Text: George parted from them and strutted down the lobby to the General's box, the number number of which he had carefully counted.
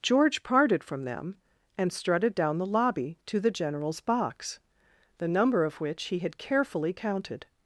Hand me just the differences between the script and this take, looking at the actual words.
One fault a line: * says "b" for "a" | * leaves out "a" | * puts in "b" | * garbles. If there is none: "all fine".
* leaves out "number"